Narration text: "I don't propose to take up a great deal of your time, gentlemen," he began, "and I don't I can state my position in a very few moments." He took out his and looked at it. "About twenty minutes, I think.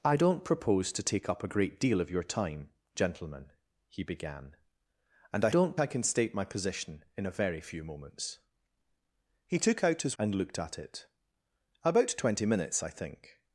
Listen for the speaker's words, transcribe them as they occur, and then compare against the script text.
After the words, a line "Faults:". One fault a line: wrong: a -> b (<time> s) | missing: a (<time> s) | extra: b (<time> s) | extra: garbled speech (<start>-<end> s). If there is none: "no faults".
"I don't propose to take up a great deal of your time, gentlemen," he began, "and I don't I can state my position in a very few moments." He took out his and looked at it. "About twenty minutes, I think.
Faults:
no faults